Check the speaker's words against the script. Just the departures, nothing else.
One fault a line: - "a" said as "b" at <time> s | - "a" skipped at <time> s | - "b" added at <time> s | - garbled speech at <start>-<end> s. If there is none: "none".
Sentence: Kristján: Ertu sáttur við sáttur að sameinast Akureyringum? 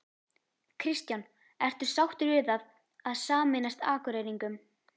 - "sáttur" said as "það" at 2.5 s